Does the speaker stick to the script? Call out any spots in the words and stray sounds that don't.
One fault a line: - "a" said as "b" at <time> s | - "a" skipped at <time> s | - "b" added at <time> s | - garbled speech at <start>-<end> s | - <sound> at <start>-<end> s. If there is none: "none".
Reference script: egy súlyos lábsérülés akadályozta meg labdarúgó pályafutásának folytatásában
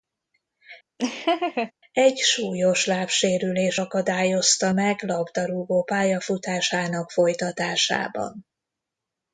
- laugh at 1.0-1.7 s